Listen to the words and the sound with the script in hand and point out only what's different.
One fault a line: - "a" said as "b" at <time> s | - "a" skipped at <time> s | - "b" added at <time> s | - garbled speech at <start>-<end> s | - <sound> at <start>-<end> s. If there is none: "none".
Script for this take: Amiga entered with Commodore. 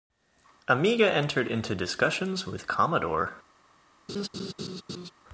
- "into discussions" added at 1.5 s
- laugh at 4.1-5.1 s